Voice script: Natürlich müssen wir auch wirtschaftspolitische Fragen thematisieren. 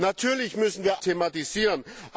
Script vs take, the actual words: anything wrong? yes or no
yes